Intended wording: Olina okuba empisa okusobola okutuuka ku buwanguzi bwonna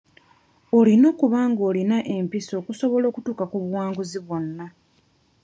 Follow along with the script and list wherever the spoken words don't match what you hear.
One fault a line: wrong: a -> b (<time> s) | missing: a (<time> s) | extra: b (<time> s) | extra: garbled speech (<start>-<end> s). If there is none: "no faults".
extra: ng'olina (1.5 s)